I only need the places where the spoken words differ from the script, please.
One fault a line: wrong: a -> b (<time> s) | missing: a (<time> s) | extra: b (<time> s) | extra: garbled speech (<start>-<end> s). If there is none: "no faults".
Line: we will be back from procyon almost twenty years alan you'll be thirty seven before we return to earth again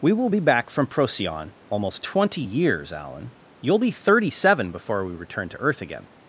no faults